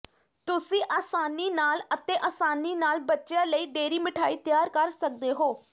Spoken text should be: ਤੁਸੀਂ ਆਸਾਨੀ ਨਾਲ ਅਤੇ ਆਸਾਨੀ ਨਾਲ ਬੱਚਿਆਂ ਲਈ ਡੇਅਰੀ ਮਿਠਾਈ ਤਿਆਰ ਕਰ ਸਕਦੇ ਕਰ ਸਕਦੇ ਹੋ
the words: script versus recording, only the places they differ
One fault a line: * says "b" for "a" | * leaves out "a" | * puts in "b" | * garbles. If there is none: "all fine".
* leaves out "ਕਰ ਸਕਦੇ"